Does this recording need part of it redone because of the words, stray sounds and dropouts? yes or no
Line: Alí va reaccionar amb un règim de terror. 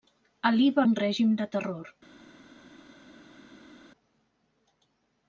yes